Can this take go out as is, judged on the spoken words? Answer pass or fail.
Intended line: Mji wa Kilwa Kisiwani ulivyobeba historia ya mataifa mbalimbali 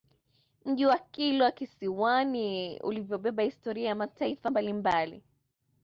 pass